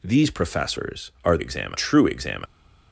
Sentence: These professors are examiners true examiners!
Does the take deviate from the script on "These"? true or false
false